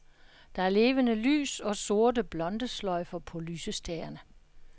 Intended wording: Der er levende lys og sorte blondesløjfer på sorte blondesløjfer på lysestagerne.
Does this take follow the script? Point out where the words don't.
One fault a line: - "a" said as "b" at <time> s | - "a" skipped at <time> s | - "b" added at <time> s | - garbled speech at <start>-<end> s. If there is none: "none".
- "sorte blondesløjfer på" skipped at 3.4 s